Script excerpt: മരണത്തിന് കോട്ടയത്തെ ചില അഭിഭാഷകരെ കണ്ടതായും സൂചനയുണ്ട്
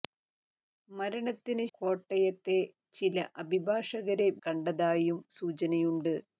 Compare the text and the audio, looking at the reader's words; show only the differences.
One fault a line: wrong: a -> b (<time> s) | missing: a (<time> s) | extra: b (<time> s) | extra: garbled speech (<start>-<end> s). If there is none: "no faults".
no faults